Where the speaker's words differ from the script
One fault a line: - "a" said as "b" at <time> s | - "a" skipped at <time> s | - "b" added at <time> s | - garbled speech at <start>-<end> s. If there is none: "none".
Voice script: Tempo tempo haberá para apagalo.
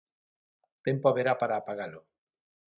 - "tempo" skipped at 1.1 s